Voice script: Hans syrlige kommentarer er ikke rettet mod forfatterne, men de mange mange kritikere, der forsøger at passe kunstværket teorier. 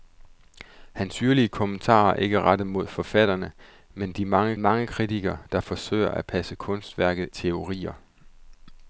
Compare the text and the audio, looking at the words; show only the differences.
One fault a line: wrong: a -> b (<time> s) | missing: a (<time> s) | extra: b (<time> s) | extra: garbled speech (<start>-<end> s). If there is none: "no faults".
no faults